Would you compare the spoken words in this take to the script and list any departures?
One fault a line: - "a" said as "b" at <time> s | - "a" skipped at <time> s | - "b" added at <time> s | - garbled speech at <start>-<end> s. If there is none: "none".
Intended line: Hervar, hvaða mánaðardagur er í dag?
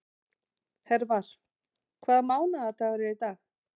none